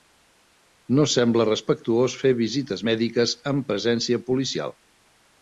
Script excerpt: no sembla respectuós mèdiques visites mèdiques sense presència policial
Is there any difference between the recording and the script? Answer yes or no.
yes